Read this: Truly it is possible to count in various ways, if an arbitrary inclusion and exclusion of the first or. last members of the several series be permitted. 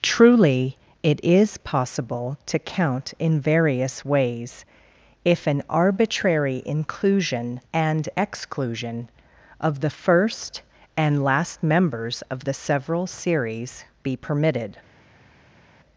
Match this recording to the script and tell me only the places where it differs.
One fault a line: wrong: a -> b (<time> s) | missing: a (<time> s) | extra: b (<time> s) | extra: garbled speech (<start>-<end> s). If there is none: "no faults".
wrong: or -> and (11.0 s)